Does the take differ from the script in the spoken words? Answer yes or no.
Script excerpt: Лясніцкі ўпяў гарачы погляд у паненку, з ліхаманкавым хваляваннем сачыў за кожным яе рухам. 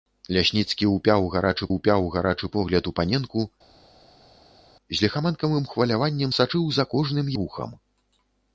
yes